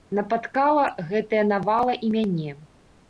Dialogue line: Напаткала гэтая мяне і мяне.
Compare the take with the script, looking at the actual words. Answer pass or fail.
fail